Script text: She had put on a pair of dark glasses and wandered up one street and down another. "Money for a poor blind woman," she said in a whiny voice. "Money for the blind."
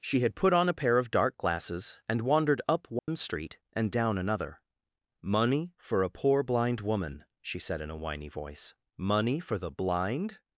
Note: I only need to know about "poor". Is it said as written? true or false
true